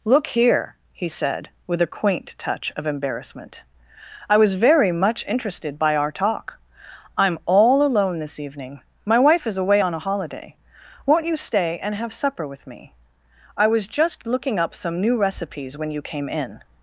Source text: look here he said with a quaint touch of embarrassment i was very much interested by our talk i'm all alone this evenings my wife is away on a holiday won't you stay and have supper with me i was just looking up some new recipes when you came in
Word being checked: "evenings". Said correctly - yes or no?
no